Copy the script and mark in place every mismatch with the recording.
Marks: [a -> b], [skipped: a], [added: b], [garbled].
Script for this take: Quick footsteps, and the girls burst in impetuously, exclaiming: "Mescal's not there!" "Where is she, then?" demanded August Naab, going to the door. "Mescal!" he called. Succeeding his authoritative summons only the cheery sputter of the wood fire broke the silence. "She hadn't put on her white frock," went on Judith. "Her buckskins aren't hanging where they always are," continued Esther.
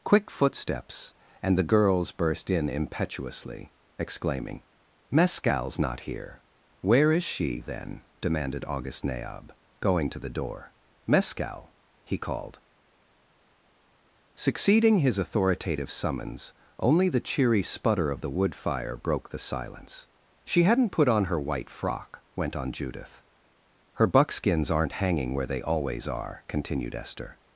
Quick footsteps, and the girls burst in impetuously, exclaiming: "Mescal's not [there!" -> here] "Where is she, then?" demanded August Naab, going to the door. "Mescal!" he called. Succeeding his authoritative summons only the cheery sputter of the wood fire broke the silence. "She hadn't put on her white frock," went on Judith. "Her buckskins aren't hanging where they always are," continued Esther.